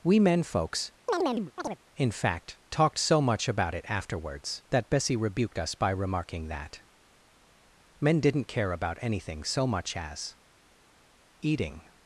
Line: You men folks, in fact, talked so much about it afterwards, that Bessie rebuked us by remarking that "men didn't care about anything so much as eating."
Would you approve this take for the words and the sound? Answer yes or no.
no